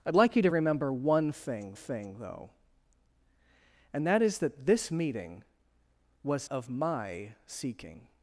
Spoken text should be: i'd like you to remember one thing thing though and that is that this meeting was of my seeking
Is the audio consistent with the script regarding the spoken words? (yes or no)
yes